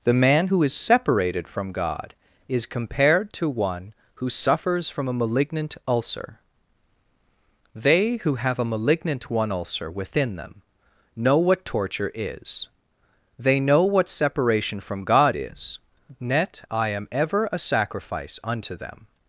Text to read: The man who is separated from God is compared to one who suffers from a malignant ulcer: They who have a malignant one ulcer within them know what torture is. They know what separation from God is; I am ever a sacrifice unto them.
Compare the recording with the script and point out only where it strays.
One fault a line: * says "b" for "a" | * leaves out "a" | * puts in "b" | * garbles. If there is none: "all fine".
* puts in "net"